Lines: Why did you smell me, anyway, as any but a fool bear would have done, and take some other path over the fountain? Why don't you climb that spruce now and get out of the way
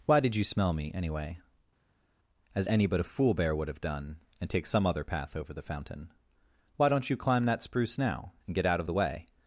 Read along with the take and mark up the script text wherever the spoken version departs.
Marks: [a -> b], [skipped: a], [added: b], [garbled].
Why did you smell me, anyway, as any but a fool bear would have done, and take some other path over the fountain? Why don't you climb that spruce now and get out of the way